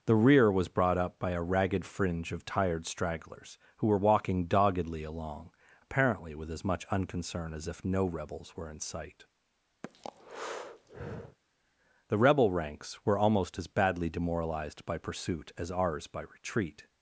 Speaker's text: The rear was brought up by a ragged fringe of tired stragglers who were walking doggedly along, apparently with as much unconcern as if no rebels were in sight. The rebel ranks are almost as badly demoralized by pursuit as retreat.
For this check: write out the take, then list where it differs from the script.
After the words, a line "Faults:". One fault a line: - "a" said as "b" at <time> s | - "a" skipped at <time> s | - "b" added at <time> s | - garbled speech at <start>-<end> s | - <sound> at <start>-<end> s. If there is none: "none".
The rear was brought up by a ragged fringe of tired stragglers who were walking doggedly along, apparently with as much unconcern as if no rebels were in sight. The rebel ranks were almost as badly demoralized by pursuit as ours by retreat.
Faults:
- breath at 9.8-11.4 s
- "are" said as "were" at 13.1 s
- "ours by" added at 15.7 s